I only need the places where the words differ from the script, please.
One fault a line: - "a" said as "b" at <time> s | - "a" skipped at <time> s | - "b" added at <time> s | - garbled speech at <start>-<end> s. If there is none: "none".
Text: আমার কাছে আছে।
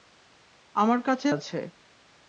none